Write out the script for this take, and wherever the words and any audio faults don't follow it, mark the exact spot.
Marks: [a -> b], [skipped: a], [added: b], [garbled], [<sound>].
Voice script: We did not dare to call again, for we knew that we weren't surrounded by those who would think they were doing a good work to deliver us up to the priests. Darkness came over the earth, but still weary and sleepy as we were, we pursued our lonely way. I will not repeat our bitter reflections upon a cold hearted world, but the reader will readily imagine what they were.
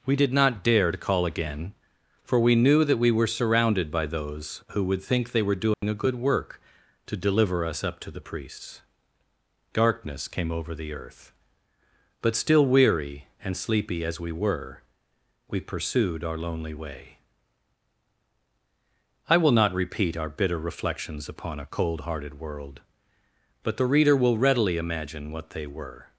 We did not dare to call again, for we knew that we [weren't -> were] surrounded by those who would think they were doing [dropout] a good work to deliver us up to the priests. Darkness came over the earth, but still weary and sleepy as we were, we pursued our lonely way. I will not repeat our bitter reflections upon a cold hearted world, but the reader will readily imagine what they were.